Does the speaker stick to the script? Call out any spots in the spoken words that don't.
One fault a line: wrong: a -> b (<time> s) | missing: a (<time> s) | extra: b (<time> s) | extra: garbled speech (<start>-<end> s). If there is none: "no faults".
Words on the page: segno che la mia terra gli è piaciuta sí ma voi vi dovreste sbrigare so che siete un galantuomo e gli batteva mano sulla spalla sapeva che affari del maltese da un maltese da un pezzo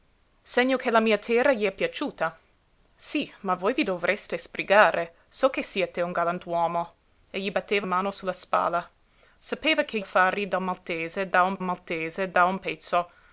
no faults